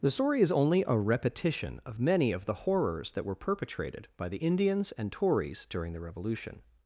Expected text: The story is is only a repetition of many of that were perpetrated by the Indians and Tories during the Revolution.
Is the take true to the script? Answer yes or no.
no